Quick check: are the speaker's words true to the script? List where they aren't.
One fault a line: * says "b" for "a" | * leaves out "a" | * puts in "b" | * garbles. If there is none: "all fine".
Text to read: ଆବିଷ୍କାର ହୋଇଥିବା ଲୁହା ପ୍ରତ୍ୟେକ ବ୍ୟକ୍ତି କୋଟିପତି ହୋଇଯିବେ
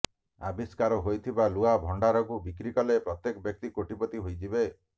* puts in "ଭଣ୍ଡାରକୁ ବିକ୍ରି କଲେ"